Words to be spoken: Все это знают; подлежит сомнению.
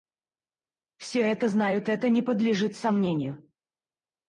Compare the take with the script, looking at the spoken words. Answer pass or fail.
fail